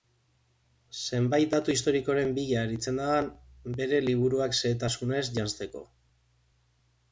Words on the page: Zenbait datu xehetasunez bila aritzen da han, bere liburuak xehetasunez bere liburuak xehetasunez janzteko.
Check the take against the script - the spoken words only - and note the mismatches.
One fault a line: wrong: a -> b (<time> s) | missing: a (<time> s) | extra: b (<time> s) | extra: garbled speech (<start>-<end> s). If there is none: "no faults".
wrong: xehetasunez -> historikoren (1.8 s)
missing: bere liburuak xehetasunez (5.2 s)